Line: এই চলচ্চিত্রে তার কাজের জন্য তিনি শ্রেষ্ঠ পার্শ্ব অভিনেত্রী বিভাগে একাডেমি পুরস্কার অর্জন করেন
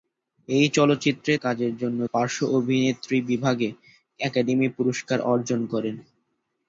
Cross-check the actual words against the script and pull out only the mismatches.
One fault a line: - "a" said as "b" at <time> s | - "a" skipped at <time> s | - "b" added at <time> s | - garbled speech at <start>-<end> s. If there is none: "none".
- "তার" skipped at 1.3 s
- "তিনি শ্রেষ্ঠ" skipped at 2.0 s